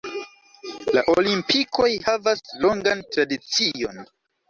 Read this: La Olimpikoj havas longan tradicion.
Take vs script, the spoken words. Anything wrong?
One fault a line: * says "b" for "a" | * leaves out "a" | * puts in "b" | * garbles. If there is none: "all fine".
all fine